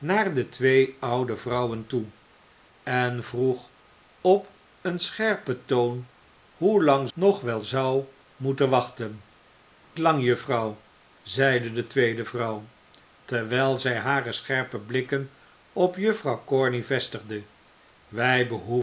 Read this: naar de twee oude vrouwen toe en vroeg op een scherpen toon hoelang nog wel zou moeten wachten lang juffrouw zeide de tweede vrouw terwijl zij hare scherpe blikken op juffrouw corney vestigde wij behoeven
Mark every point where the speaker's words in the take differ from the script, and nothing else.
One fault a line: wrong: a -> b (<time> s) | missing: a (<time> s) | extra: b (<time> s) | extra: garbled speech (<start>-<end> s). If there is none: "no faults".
no faults